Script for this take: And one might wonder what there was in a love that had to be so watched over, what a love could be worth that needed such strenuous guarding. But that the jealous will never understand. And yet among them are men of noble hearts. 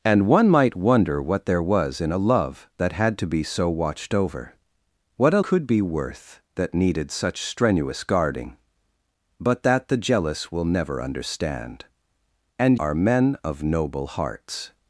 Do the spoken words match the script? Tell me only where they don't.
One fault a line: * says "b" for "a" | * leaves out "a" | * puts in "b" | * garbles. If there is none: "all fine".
* leaves out "love"
* leaves out "yet among them"